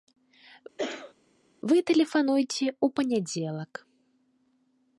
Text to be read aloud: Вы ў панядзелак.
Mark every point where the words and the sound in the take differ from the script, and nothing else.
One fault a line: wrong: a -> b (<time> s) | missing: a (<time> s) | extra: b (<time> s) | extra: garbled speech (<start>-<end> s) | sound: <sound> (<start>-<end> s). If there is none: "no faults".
sound: cough (0.8-1.1 s)
extra: тэлефануйце (1.9 s)